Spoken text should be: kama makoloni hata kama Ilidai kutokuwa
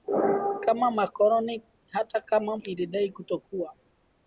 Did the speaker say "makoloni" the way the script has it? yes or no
yes